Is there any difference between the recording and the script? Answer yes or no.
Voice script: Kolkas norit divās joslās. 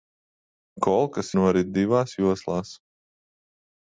no